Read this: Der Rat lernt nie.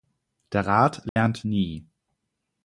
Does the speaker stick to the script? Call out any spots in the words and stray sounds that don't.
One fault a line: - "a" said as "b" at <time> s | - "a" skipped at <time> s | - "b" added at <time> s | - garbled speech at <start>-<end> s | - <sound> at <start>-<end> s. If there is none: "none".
- dropout at 1.1-1.2 s